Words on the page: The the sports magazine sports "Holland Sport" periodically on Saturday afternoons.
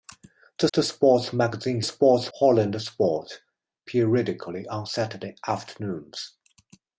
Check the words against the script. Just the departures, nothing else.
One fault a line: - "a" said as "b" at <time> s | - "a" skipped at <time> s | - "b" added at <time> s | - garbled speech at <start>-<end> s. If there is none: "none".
none